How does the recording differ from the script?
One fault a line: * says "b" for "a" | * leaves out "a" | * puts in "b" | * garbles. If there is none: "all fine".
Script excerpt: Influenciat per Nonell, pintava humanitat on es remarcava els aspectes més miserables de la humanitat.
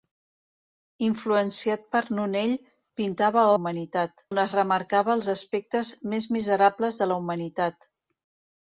all fine